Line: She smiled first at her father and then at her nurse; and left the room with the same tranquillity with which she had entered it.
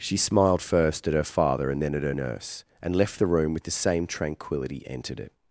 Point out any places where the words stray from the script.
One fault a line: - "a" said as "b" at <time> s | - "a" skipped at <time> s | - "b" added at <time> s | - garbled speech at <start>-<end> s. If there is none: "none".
- "with which she had" skipped at 4.8 s